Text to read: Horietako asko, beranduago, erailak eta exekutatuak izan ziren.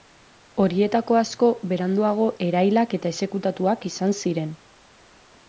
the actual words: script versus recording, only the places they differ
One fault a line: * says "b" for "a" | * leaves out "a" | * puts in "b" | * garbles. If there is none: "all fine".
all fine